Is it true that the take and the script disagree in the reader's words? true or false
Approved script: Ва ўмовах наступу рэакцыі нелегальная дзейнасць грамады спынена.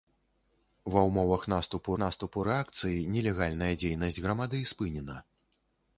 true